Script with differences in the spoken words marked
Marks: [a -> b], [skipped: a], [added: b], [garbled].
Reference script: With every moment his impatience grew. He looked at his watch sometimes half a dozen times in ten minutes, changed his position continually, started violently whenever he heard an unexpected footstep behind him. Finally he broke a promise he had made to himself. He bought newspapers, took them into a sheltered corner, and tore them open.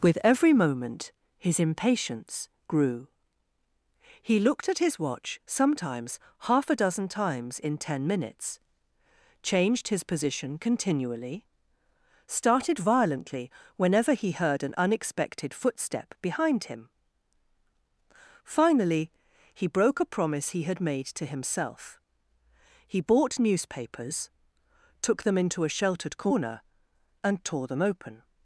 With every moment his impatience grew. He looked at his watch sometimes half a dozen times in ten minutes, changed his position continually, started violently whenever he heard an unexpected footstep behind him. Finally he broke a promise he had made to himself. He bought newspapers, took them into a sheltered corner, and tore them open.